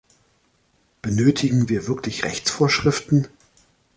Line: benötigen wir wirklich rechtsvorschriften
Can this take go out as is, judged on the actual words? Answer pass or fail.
pass